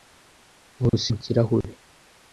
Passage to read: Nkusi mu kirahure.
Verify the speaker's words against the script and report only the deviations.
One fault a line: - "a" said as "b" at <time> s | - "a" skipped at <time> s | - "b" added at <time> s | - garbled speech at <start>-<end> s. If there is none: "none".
none